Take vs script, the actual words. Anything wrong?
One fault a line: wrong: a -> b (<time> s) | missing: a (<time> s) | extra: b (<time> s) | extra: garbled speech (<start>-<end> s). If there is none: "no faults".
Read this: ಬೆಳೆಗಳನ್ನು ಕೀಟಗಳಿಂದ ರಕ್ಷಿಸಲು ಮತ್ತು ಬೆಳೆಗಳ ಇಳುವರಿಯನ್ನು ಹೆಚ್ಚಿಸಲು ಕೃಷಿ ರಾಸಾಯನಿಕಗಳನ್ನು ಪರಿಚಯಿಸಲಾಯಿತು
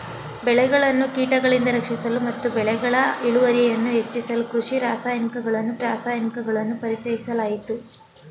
extra: ರಾಸಾಯನಿಕಗಳನ್ನು (5.8 s)